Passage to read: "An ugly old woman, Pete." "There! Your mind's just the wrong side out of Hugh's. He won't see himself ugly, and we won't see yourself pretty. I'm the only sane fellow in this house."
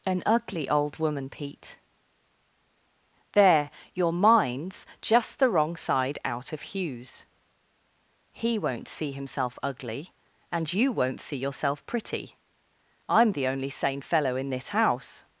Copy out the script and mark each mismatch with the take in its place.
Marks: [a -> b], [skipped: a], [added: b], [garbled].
"An ugly old woman, Pete." "There! Your mind's just the wrong side out of Hugh's. He won't see himself ugly, and [we -> you] won't see yourself pretty. I'm the only sane fellow in this house."